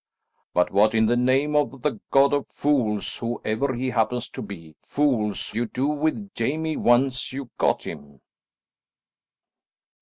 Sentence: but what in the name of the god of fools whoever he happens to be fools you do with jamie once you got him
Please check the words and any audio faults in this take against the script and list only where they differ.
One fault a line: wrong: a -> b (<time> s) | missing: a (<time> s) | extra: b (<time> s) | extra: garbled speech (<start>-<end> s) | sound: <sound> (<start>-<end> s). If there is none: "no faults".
no faults